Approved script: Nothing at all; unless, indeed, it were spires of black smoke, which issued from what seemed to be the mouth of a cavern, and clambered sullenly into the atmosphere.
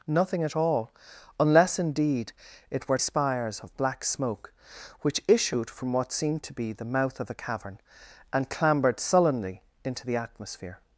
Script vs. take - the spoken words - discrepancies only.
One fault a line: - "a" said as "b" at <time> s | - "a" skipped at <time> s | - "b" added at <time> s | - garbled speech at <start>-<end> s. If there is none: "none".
none